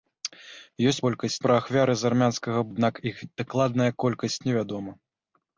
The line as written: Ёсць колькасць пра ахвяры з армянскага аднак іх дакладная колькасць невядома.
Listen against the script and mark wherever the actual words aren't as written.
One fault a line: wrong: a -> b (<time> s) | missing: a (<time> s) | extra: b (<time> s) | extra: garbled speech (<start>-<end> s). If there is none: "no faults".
no faults